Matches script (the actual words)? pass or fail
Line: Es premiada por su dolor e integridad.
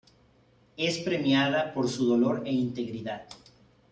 pass